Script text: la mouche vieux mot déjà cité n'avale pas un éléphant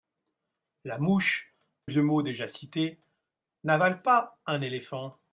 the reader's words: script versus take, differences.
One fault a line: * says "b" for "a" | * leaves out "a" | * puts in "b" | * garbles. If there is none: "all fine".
all fine